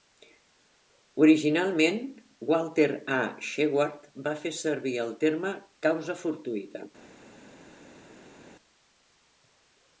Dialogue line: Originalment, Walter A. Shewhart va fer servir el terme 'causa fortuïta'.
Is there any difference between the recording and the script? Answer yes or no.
no